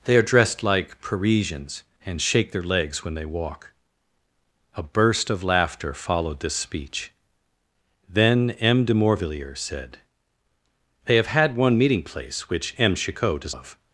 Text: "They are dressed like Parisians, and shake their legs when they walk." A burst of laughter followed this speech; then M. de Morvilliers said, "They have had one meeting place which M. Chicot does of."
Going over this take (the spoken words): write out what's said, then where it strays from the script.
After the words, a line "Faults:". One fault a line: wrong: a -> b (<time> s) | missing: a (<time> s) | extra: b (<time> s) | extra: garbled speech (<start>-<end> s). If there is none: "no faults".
"They are dressed like Parisians, and shake their legs when they walk." A burst of laughter followed this speech; then M. de Morvilliers said, "They have had one meeting place which M. Chicot does of."
Faults:
no faults